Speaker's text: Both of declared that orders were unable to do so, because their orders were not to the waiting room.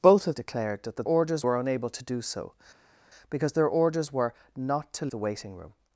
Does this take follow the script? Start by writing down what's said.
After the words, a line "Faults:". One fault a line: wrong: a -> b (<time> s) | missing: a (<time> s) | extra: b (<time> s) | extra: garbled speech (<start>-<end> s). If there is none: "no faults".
Both of declared that orders were unable to do so, because their orders were not to the waiting room.
Faults:
no faults